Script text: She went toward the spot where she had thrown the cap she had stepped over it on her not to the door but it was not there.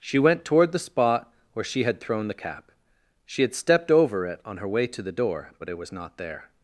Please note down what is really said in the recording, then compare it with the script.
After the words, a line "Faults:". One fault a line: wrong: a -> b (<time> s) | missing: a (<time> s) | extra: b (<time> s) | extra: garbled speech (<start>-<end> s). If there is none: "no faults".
She went toward the spot where she had thrown the cap she had stepped over it on her way to the door but it was not there.
Faults:
wrong: not -> way (4.7 s)